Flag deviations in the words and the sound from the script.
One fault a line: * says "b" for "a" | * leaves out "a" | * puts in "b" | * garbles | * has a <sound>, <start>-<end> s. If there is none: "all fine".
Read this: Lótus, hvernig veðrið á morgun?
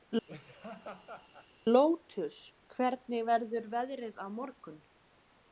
* has a laugh, 0.3-1.5 s
* puts in "verður"